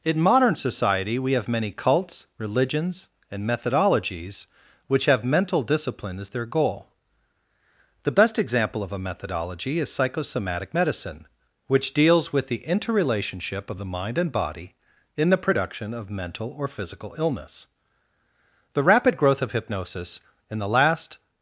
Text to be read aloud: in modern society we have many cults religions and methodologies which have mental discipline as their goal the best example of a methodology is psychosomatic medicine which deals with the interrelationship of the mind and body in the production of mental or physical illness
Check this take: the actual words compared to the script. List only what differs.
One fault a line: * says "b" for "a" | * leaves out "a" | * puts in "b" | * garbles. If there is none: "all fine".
* puts in "the rapid growth of hypnosis in the last"